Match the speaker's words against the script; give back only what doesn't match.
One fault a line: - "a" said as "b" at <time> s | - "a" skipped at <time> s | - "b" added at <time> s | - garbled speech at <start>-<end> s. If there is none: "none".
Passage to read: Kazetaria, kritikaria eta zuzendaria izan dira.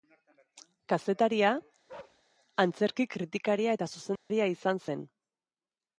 - "antzerki" added at 2.6 s
- "dira" said as "zen" at 4.9 s